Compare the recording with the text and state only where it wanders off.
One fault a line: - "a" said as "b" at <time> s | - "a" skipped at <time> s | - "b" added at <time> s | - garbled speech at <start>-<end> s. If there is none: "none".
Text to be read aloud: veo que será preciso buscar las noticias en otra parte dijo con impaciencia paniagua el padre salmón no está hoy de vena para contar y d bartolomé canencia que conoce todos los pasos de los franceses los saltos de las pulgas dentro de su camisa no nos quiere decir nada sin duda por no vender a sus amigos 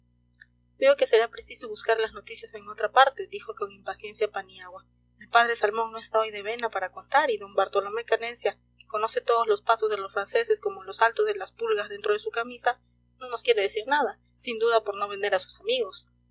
- "como" added at 10.6 s